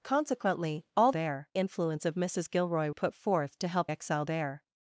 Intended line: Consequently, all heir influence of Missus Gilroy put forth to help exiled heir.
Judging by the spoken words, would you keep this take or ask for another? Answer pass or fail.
pass